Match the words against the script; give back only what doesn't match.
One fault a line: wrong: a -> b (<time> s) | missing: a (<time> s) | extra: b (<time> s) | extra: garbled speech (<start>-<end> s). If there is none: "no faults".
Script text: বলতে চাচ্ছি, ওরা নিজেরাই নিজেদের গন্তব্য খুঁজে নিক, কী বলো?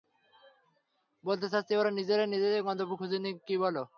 no faults